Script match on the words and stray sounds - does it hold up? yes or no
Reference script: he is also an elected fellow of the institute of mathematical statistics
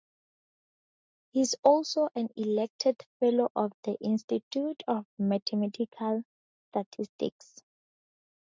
yes